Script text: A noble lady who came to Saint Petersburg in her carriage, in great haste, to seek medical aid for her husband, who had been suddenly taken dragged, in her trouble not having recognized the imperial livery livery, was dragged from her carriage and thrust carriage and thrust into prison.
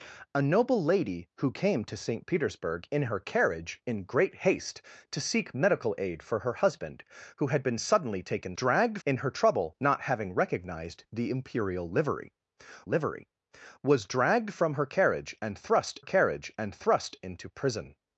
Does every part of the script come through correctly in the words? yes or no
yes